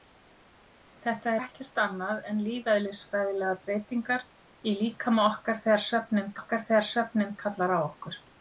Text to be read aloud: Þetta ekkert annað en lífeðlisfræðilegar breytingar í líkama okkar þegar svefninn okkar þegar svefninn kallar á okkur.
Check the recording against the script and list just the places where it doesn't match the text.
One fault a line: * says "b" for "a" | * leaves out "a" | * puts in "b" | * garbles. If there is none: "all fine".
all fine